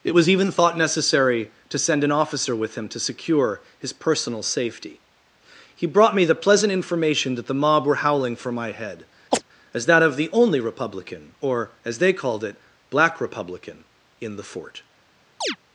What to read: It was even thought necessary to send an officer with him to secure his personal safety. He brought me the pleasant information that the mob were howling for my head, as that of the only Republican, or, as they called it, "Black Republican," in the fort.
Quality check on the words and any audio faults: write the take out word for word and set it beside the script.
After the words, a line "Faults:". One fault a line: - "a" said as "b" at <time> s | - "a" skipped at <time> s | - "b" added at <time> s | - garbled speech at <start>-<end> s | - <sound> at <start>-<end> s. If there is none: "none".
It was even thought necessary to send an officer with him to secure his personal safety. He brought me the pleasant information that the mob were howling for my head, as that of the only Republican, or, as they called it, "Black Republican," in the fort.
Faults:
- chirp at 9.3-9.4 s
- chirp at 15.4-15.6 s